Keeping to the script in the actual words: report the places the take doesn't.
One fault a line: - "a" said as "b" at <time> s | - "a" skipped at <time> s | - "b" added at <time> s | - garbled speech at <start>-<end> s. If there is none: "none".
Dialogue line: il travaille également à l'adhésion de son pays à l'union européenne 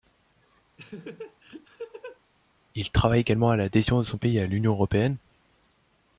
none